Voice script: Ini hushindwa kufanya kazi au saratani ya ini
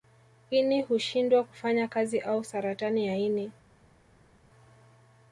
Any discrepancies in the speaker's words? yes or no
no